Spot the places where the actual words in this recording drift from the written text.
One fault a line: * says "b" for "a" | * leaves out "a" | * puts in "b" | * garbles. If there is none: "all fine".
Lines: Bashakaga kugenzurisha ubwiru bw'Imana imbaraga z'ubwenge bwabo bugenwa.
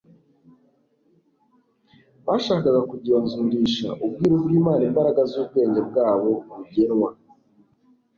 all fine